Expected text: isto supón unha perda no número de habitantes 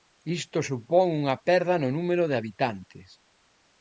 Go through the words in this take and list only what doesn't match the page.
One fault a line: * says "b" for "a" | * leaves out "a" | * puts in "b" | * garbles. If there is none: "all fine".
all fine